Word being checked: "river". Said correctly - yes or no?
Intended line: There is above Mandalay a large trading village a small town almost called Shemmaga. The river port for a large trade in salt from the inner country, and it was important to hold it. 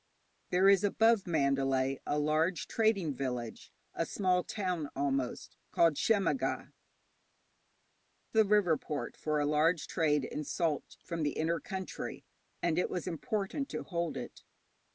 yes